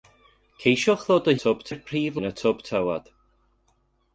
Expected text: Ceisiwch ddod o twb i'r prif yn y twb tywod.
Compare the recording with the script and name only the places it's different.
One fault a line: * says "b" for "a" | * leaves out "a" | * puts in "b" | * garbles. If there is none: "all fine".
all fine